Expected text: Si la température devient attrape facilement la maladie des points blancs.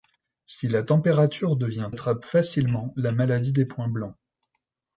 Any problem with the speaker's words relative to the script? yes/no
no